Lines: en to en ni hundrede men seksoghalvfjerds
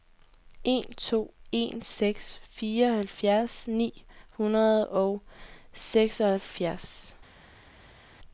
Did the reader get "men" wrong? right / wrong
wrong